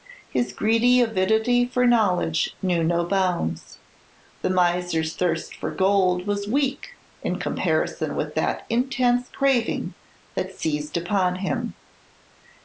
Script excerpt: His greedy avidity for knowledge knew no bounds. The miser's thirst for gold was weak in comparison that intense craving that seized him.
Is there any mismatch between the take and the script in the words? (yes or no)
yes